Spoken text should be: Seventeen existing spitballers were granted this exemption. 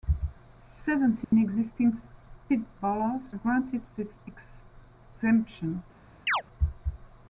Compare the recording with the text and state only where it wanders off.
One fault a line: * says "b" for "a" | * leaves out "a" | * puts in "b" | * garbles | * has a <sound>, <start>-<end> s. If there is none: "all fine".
* has a dropout, 1.2-1.3 s
* leaves out "were"
* has a chirp, 6.3-6.4 s